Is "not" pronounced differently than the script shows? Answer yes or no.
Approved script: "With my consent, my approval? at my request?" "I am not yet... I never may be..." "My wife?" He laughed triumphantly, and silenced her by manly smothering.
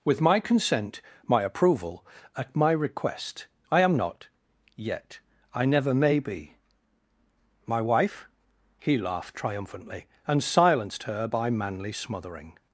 no